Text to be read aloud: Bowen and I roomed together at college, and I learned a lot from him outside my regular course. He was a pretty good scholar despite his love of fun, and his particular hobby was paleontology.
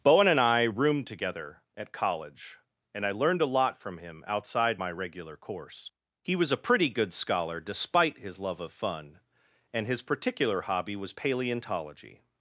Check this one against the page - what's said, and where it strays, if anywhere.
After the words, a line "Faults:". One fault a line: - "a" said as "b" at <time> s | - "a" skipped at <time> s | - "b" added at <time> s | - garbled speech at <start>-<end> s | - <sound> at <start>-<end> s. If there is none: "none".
Bowen and I roomed together at college, and I learned a lot from him outside my regular course. He was a pretty good scholar despite his love of fun, and his particular hobby was paleontology.
Faults:
none